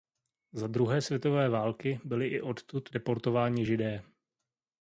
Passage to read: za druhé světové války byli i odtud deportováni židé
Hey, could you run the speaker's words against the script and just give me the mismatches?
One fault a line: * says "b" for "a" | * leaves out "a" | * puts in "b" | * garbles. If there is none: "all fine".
all fine